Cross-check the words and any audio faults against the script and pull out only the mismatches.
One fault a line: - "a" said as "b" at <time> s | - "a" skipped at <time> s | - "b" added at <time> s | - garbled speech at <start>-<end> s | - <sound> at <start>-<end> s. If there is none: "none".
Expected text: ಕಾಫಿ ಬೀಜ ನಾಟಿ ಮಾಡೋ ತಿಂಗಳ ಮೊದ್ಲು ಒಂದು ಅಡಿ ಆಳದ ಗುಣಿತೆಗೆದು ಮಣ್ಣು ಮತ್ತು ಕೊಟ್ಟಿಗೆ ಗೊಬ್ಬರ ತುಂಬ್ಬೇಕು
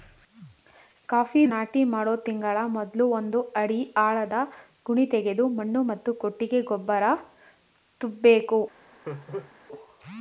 - "ಬೀಜ" skipped at 1.4 s
- laugh at 9.0-9.5 s